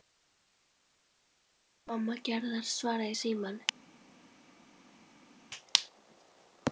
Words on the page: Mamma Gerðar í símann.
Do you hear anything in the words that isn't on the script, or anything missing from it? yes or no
yes